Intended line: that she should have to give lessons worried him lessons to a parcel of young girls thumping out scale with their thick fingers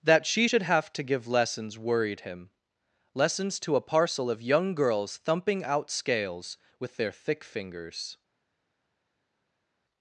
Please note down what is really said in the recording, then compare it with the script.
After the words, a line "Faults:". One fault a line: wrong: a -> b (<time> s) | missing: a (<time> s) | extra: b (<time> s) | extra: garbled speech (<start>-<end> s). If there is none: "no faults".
that she should have to give lessons worried him lessons to a parcel of young girls thumping out scales with their thick fingers
Faults:
wrong: scale -> scales (5.9 s)